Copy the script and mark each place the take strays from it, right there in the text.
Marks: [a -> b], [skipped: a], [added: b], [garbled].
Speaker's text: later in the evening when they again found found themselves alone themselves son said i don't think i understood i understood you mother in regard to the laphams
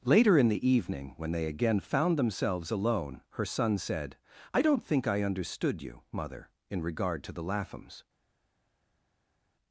later in the evening when they again found [skipped: found] themselves alone [themselves -> her] son said i don't think i understood [skipped: i understood] you mother in regard to the laphams